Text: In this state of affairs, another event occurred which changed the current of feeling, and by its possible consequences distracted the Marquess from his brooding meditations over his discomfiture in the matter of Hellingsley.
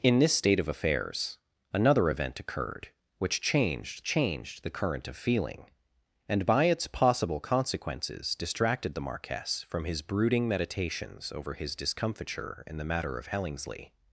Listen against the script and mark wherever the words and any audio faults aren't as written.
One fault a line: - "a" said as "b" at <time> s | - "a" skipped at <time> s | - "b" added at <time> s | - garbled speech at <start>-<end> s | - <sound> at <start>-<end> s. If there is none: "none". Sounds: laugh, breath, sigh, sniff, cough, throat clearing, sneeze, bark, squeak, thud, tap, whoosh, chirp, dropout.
- "changed" added at 4.0 s